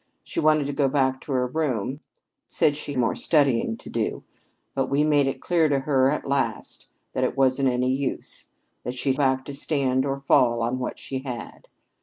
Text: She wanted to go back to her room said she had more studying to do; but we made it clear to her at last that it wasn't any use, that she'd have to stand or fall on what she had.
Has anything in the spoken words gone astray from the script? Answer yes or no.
yes